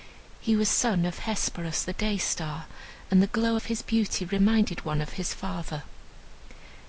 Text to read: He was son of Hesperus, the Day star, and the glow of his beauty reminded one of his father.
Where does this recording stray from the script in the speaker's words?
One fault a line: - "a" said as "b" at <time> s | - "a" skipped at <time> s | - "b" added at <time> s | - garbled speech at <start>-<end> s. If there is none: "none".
none